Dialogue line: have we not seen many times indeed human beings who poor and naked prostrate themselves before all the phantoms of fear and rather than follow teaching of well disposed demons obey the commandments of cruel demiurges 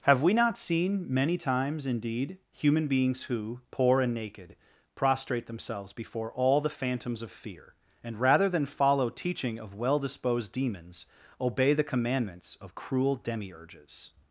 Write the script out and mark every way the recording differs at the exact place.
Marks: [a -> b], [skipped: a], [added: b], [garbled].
have we not seen many times indeed human beings who poor and naked prostrate themselves before all the phantoms of fear and rather than follow teaching of well disposed demons obey the commandments of cruel demiurges